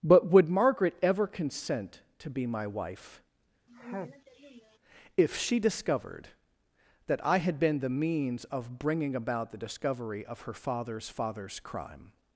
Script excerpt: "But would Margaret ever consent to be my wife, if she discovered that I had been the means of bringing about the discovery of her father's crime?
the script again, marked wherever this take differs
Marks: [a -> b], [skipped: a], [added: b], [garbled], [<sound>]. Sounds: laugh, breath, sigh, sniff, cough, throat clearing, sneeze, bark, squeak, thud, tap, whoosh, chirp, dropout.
"But would Margaret ever consent to be my wife, [sneeze] if she discovered that I had been the means of bringing about the discovery of her father's [added: father's] crime?